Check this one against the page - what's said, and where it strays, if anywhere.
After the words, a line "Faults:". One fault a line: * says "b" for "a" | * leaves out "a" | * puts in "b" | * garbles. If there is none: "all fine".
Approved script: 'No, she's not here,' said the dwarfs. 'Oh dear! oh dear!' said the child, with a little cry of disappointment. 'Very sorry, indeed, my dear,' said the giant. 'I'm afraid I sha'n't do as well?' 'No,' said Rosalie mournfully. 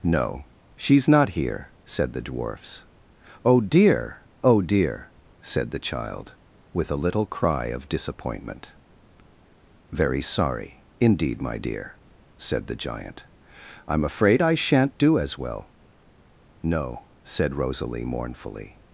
'No, she's not here,' said the dwarfs. 'Oh dear! oh dear!' said the child, with a little cry of disappointment. 'Very sorry, indeed, my dear,' said the giant. 'I'm afraid I sha'n't do as well?' 'No,' said Rosalie mournfully.
Faults:
all fine